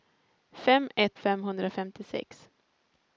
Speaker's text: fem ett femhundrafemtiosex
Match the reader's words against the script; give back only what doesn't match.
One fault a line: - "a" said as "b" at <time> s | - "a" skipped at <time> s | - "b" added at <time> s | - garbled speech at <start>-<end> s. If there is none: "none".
none